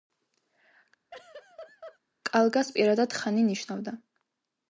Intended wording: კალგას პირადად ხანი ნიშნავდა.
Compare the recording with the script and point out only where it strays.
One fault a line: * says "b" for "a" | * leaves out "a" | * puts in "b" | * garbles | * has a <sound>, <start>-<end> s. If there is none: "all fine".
* has a laugh, 1.1-2.0 s